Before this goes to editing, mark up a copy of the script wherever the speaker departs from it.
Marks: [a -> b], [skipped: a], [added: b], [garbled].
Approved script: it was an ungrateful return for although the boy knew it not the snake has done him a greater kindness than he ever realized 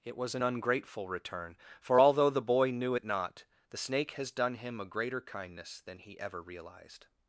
it was an ungrateful return for although the boy knew it not the snake has done him a greater kindness than he ever realized